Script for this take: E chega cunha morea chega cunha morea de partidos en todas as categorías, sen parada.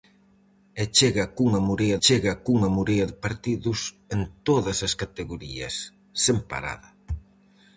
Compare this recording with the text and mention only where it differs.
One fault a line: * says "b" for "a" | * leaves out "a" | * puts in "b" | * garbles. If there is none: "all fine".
all fine